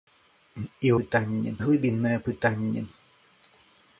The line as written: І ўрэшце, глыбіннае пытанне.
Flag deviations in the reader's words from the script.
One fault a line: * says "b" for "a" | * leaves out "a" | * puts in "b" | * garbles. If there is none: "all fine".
* says "пытанне" for "ўрэшце"